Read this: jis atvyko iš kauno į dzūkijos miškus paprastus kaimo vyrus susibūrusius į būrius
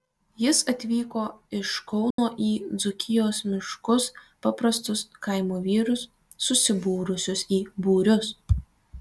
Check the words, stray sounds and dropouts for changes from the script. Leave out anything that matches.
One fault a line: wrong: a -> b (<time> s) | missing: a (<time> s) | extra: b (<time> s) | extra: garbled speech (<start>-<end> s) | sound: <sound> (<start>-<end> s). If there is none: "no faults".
sound: dropout (2.1-2.2 s)